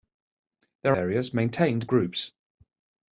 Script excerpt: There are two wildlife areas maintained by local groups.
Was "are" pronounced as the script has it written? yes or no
no